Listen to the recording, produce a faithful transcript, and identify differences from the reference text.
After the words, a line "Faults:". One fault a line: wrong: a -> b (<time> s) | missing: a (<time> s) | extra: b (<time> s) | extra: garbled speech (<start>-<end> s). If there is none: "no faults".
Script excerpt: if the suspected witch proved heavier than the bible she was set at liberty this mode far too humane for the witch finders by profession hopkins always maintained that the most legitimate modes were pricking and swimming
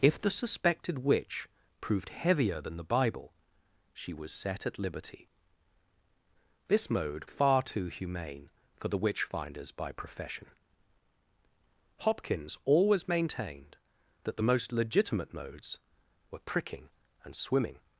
if the suspected witch proved heavier than the bible she was set at liberty this mode far too humane for the witch finders by profession hopkins always maintained that the most legitimate modes were pricking and swimming
Faults:
no faults